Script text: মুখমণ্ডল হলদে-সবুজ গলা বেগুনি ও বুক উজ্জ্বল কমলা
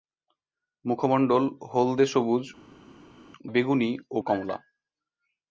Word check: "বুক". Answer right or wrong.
wrong